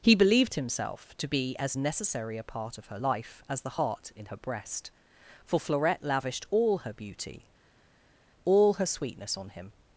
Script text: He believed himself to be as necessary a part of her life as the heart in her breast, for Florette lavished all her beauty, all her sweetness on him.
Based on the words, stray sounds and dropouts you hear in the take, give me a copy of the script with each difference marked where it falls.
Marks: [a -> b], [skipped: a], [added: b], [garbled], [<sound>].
He believed himself to be as necessary a part of her life as the heart in her breast, for Florette lavished all her beauty, all her sweetness on him.